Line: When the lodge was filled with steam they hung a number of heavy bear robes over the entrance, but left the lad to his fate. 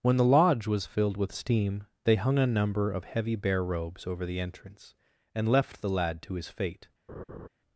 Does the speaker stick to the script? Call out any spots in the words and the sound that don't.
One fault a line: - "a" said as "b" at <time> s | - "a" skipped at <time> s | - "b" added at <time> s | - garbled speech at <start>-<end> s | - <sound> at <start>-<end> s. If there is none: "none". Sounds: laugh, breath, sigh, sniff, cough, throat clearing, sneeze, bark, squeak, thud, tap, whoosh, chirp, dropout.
- "but" said as "and" at 5.3 s
- laugh at 7.1-7.5 s